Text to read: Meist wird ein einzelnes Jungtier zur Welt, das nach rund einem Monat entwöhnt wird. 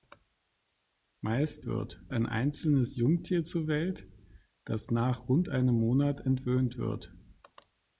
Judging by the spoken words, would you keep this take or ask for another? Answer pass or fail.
pass